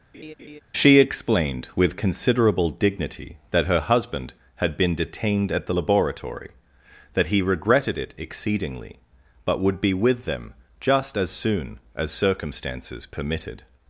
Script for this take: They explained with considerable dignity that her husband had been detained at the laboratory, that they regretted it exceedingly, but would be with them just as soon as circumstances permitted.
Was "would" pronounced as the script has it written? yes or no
yes